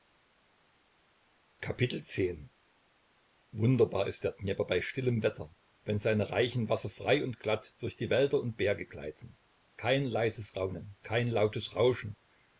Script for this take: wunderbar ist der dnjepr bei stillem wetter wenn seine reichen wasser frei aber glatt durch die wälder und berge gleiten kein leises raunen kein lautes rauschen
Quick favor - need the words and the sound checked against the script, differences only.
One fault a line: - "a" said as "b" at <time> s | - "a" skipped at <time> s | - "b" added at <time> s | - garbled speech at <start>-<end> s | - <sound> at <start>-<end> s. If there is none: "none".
- "aber" said as "und" at 7.2 s